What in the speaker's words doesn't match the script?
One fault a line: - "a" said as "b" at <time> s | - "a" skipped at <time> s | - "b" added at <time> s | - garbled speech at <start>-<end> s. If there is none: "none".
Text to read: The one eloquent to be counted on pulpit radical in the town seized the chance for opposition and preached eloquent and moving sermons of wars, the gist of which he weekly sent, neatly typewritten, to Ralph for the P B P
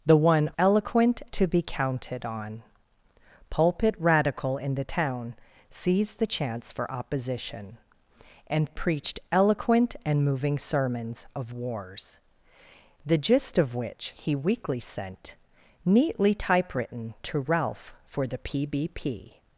none